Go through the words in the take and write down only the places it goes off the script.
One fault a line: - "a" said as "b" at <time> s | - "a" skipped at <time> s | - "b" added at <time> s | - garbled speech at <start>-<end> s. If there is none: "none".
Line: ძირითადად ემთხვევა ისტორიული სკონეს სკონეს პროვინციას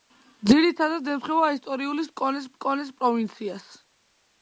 none